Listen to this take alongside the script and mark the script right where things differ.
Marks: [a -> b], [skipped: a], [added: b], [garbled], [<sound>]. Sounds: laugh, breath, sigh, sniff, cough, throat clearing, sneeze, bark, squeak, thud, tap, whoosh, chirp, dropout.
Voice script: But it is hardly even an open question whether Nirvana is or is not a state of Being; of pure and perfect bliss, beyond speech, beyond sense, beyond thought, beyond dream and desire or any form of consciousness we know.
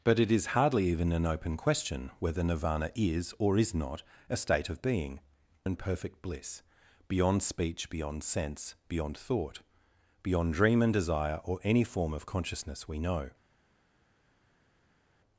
But it is hardly even an open question whether Nirvana is or is not a state of Being; [skipped: of pure] and perfect bliss, beyond speech, beyond sense, beyond thought, beyond dream and desire or any form of consciousness we know.